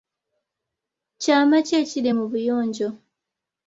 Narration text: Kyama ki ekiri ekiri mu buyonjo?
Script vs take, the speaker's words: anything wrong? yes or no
yes